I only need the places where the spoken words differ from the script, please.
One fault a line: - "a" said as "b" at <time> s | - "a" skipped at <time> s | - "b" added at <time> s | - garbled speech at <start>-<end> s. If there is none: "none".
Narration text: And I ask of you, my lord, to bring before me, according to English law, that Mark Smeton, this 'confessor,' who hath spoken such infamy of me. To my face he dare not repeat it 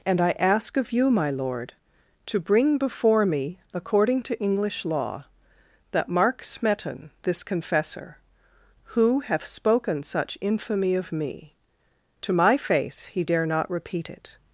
none